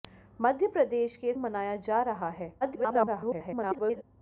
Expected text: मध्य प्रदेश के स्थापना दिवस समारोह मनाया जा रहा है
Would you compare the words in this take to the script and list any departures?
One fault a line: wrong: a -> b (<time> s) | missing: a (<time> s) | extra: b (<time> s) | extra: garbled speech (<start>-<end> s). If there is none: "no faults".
missing: स्थापना दिवस समारोह (1.3 s)
extra: garbled speech (2.6-4.0 s)